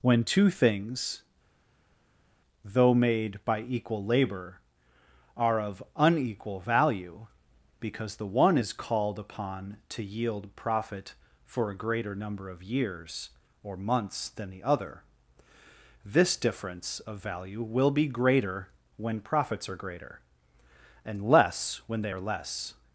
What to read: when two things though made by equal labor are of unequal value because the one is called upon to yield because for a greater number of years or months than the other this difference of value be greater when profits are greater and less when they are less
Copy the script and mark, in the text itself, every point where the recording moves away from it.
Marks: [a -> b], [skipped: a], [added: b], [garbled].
when two things though made by equal labor are of unequal value because the one is called upon to yield [because -> profit] for a greater number of years or months than the other this difference of value [added: will] be greater when profits are greater and less when they are less